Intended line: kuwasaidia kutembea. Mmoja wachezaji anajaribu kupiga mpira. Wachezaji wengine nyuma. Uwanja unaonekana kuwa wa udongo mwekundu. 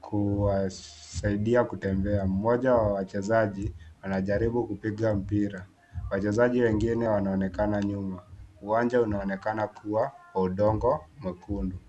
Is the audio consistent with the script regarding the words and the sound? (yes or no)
no